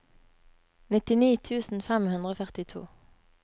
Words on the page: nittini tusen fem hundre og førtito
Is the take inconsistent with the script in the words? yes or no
no